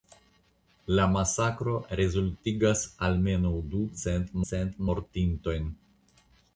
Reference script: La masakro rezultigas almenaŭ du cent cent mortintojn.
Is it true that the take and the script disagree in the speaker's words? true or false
false